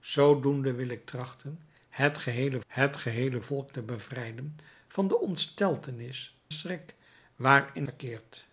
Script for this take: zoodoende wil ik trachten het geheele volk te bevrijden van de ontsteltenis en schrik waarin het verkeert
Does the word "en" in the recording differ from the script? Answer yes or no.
yes